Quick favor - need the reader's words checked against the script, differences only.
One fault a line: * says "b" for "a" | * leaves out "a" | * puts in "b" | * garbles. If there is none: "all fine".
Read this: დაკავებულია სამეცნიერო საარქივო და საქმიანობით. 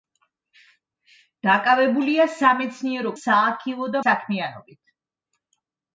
all fine